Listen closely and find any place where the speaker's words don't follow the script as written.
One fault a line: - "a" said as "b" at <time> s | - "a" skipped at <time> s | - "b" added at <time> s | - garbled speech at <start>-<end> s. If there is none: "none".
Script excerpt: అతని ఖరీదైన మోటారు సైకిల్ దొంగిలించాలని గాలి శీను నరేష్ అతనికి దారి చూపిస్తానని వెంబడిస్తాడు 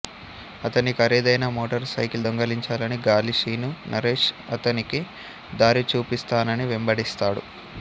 none